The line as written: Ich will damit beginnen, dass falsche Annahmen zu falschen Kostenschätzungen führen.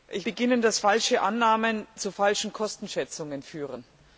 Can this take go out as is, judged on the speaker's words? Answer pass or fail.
fail